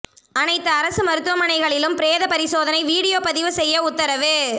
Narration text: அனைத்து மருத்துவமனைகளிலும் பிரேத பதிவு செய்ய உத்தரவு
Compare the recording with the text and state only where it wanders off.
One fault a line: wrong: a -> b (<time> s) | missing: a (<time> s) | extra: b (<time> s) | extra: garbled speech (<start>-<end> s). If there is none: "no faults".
extra: அரசு (0.7 s)
extra: பரிசோதனை வீடியோ (2.3 s)